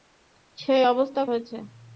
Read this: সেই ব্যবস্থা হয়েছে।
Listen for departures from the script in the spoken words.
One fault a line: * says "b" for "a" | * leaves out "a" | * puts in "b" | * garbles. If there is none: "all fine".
all fine